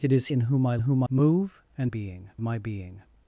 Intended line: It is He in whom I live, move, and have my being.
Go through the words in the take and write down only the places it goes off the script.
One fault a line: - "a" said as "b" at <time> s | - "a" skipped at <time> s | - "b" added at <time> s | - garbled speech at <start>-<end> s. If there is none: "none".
- "He" skipped at 0.3 s
- "live" said as "whom" at 0.8 s
- "have" said as "being" at 1.9 s